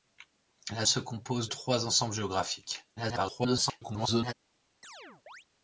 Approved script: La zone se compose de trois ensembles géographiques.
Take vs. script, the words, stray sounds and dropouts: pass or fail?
fail